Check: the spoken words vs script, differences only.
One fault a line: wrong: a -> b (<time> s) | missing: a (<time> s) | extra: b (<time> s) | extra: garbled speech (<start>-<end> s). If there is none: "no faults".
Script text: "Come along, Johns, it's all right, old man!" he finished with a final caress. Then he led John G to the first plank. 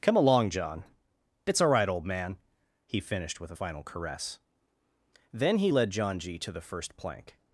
wrong: Johns -> John (0.5 s)